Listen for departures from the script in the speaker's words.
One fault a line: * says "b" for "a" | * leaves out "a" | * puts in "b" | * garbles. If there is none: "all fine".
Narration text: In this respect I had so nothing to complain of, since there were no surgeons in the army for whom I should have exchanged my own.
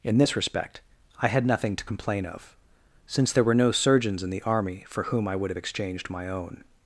* leaves out "so"
* says "would" for "should"